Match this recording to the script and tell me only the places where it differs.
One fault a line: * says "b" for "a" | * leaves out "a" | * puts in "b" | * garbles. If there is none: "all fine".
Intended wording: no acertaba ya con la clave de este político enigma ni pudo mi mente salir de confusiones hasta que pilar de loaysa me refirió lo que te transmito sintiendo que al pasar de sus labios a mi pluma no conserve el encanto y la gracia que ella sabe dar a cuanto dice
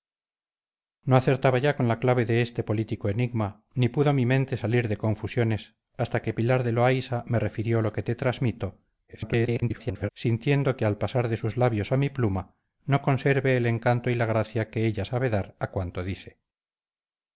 * garbles